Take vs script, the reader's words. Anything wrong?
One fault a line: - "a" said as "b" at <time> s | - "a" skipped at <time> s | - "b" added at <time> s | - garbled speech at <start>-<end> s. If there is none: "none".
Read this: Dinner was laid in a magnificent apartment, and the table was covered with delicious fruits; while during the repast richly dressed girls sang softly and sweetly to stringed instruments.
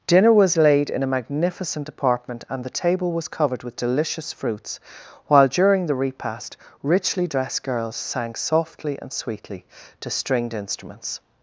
none